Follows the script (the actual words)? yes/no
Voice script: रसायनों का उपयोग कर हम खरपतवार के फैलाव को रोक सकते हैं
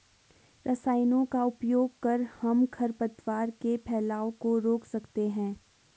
yes